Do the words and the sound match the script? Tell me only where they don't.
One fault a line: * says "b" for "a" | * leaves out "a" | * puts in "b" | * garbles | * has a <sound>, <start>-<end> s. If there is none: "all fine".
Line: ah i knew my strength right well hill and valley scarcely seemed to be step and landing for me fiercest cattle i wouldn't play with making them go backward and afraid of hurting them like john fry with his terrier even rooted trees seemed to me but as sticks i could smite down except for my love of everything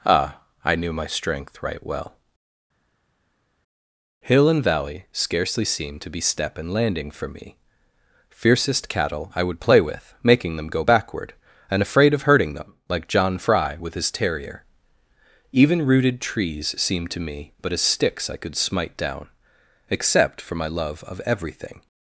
* says "would" for "wouldn't"